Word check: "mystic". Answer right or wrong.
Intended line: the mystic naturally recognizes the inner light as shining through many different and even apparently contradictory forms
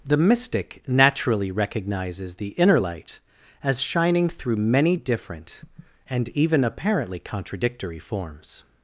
right